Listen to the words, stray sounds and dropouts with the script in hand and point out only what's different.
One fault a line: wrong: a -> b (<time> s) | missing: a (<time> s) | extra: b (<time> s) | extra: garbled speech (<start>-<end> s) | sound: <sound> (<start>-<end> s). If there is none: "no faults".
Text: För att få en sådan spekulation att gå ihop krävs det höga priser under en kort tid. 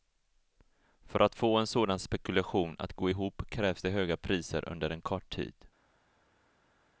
no faults